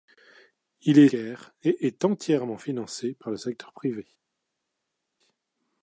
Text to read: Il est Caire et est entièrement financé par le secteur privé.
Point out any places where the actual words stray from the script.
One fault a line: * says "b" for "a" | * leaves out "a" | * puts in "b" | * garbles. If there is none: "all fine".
all fine